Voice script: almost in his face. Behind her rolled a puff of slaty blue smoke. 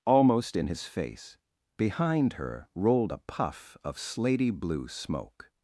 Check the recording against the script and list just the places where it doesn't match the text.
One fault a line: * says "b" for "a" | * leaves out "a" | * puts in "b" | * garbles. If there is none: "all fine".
all fine